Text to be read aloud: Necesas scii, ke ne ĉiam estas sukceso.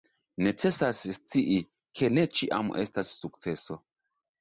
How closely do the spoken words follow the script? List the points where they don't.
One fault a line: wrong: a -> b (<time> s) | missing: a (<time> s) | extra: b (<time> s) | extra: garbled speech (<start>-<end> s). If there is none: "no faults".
no faults